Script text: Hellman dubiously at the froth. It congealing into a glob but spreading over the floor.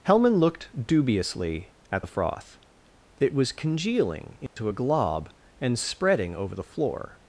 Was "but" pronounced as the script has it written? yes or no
no